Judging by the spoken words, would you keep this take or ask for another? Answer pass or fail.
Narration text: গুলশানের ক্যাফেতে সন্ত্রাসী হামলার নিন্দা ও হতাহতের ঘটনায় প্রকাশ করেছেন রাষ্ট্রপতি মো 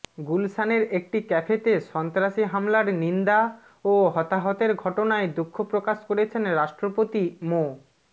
fail